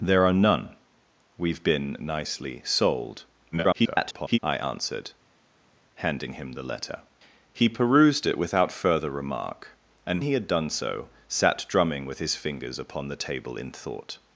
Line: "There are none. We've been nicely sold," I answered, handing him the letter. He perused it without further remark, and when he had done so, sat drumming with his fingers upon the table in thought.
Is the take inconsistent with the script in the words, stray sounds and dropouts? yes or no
yes